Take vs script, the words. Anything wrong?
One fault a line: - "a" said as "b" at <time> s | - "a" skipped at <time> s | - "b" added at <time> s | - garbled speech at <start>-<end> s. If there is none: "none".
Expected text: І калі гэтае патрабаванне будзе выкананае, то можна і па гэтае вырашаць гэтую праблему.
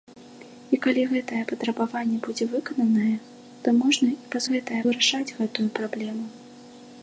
none